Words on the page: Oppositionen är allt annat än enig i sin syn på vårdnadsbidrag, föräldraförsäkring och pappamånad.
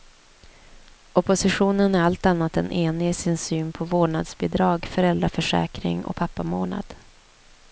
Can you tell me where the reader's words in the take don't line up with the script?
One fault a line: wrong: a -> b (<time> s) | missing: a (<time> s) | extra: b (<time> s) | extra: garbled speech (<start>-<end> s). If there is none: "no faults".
no faults